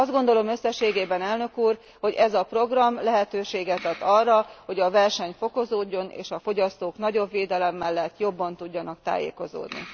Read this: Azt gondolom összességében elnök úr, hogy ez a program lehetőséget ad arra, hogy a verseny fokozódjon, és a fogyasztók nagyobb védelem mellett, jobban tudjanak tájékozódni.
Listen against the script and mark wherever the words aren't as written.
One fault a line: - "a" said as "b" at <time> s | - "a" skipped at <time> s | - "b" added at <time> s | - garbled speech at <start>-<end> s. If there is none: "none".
none